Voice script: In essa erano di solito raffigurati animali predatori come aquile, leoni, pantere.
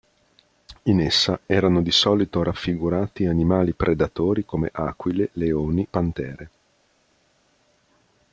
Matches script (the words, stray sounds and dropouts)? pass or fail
pass